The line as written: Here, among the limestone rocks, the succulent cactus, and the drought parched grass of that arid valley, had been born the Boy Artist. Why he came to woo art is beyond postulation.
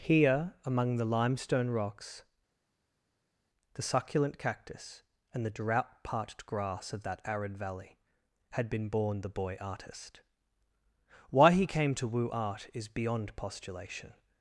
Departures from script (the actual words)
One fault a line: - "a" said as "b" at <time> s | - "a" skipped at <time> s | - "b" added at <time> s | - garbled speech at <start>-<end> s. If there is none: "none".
none